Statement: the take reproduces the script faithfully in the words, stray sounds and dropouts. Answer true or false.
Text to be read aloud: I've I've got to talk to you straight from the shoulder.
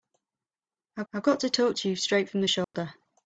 false